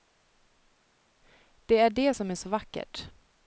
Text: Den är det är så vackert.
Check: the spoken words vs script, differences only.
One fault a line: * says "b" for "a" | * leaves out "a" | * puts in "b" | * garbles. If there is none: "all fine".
* says "Det" for "Den"
* puts in "som"